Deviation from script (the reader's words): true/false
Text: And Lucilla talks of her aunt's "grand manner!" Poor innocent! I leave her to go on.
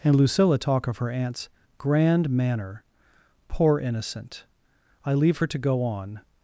true